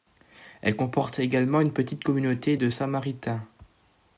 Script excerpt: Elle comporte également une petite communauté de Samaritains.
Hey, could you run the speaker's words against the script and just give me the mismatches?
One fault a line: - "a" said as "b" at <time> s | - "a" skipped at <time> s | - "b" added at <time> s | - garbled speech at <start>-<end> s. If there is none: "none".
none